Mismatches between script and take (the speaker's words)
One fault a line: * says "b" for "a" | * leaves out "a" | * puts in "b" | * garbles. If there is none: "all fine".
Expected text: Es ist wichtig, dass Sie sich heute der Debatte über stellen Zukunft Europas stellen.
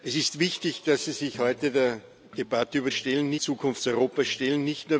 all fine